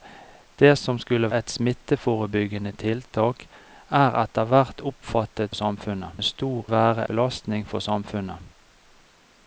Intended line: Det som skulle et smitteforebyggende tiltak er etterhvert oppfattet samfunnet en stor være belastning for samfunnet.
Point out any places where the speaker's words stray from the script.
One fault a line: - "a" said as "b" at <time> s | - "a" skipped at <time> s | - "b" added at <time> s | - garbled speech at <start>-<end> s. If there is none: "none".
none